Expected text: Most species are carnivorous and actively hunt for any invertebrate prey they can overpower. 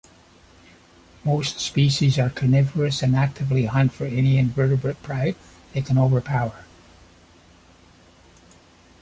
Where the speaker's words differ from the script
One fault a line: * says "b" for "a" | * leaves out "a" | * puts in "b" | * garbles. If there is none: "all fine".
all fine